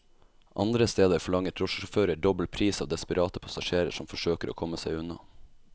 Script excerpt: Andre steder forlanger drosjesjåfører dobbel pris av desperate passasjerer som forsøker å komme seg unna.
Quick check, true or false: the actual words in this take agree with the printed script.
true